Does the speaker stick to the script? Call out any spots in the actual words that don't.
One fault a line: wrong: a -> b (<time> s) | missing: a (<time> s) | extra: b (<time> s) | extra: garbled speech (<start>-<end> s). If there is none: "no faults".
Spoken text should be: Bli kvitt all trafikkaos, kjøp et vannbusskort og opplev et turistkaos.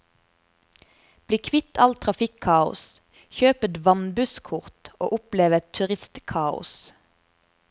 no faults